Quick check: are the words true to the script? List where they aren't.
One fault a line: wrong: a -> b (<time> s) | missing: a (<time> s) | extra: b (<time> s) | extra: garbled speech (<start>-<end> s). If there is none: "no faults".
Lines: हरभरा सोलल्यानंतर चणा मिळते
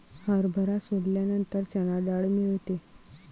extra: डाळ (2.1 s)